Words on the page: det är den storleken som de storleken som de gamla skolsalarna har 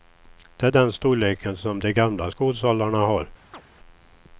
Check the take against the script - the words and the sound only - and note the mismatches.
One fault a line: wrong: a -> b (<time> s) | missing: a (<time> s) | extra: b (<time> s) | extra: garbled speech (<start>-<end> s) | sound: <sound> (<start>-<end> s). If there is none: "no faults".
missing: storleken som de (1.9 s)
sound: chirp (3.5-3.6 s)